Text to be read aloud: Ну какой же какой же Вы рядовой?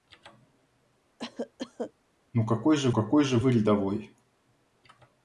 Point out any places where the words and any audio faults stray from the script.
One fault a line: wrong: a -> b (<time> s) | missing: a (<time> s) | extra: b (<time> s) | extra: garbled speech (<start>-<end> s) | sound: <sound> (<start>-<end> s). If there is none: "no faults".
sound: cough (1.2-1.9 s)